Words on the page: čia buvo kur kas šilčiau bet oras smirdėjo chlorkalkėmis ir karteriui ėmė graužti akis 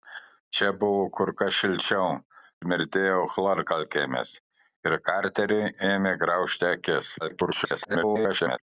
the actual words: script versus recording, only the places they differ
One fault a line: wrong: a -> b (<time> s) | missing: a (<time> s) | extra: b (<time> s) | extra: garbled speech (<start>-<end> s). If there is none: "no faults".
missing: bet oras (2.1 s)
extra: garbled speech (7.2-8.6 s)